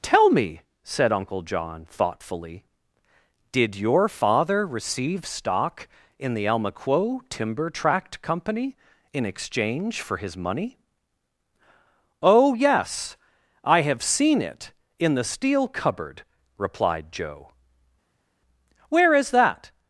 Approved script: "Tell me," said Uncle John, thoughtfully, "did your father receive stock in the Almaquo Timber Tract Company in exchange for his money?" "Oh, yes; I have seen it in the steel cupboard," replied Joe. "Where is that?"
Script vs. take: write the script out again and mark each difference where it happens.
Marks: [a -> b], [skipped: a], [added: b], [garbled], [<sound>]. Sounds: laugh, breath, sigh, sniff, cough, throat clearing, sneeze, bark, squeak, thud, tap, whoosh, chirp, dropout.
"Tell me," said Uncle John, thoughtfully, "did your father receive stock in the Almaquo Timber Tract Company in exchange for his money?" "Oh, yes; I have seen it in the steel cupboard," replied Joe. "Where is that?"